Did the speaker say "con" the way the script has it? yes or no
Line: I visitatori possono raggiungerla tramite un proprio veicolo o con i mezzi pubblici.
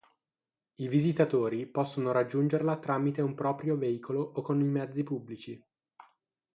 yes